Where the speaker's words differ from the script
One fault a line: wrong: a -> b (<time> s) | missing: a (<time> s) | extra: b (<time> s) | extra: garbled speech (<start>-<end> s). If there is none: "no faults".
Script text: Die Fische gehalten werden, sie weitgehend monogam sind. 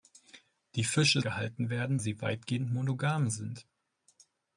no faults